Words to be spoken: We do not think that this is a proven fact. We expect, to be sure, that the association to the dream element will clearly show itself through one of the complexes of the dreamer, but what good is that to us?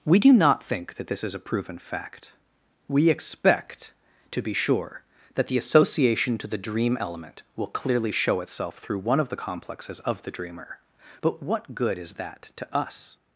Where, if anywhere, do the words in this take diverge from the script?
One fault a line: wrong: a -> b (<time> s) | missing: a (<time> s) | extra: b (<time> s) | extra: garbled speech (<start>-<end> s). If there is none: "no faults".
no faults